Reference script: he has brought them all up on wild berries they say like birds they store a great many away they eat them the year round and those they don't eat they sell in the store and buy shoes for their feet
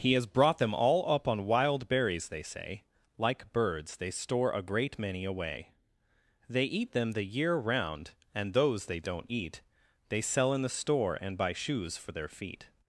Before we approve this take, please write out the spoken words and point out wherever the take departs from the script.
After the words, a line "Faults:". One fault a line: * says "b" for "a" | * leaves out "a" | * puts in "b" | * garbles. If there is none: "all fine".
he has brought them all up on wild berries they say like birds they store a great many away they eat them the year round and those they don't eat they sell in the store and buy shoes for their feet
Faults:
all fine